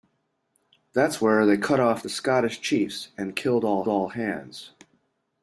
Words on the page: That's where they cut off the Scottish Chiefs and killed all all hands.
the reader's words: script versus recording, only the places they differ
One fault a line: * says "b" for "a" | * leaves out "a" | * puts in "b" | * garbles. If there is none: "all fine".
all fine